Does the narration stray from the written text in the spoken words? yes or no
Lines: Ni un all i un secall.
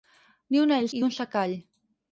no